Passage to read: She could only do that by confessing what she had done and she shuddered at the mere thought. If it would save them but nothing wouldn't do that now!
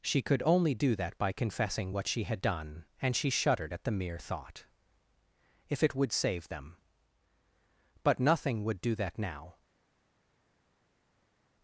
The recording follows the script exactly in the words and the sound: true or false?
false